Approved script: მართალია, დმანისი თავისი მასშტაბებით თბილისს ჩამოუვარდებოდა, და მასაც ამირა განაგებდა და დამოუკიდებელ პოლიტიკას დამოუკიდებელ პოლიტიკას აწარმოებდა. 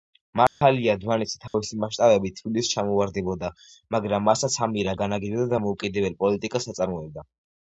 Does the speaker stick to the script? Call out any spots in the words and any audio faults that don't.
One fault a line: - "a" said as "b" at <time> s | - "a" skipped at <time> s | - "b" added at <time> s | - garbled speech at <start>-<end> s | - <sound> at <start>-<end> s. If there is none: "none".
- dropout at 0.5-0.6 s
- dropout at 1.5-1.5 s
- "და" said as "მაგრამ" at 4.0 s
- "დამოუკიდებელ პოლიტიკას" skipped at 6.7 s